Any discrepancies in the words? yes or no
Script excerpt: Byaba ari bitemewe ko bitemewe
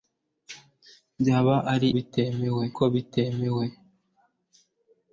no